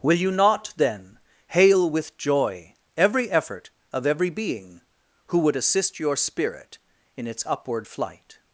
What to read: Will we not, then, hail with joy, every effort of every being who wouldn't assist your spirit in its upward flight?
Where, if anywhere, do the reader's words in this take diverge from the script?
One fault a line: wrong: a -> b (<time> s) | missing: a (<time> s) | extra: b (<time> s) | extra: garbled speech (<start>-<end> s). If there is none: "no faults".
wrong: we -> you (0.2 s)
wrong: wouldn't -> would (5.4 s)